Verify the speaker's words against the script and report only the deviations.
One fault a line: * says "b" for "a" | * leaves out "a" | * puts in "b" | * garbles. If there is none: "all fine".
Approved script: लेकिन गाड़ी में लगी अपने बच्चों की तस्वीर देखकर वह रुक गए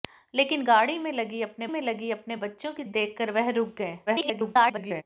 * puts in "में लगी अपने"
* leaves out "तस्वीर"
* garbles